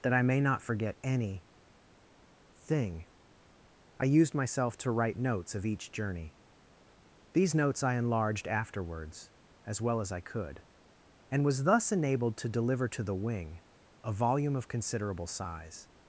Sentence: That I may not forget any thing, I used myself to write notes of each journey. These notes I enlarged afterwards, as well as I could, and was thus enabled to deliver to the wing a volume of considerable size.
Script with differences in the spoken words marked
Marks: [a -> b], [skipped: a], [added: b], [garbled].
That I may not forget any thing, I used myself to write notes of each journey. These notes I enlarged afterwards, as well as I could, and was thus enabled to deliver to the wing a volume of considerable size.